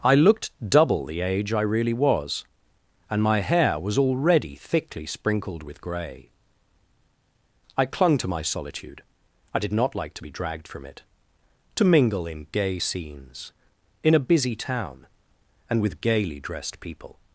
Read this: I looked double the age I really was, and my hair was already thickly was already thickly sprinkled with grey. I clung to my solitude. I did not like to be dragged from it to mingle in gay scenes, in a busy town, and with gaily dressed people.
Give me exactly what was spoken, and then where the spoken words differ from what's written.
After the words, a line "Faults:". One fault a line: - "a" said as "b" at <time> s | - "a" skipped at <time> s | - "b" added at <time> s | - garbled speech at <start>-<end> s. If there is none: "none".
I looked double the age I really was, and my hair was already thickly sprinkled with grey. I clung to my solitude. I did not like to be dragged from it to mingle in gay scenes, in a busy town, and with gaily dressed people.
Faults:
- "was already thickly" skipped at 5.1 s